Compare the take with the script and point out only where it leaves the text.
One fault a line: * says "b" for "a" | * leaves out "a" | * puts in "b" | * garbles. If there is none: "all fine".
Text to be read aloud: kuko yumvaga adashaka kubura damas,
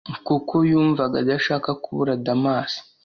all fine